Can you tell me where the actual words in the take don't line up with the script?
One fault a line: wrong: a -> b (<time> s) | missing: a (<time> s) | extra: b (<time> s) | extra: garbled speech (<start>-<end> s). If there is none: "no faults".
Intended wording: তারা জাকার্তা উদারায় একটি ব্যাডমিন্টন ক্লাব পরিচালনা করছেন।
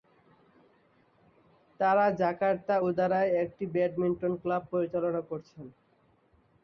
no faults